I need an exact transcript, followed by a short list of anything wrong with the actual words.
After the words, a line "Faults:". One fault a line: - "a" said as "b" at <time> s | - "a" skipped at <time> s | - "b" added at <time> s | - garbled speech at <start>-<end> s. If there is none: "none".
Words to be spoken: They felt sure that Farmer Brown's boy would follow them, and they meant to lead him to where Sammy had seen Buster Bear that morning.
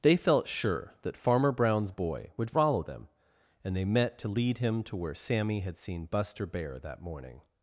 They felt sure that Farmer Brown's boy would follow them, and they met to lead him to where Sammy had seen Buster Bear that morning.
Faults:
- "meant" said as "met" at 3.8 s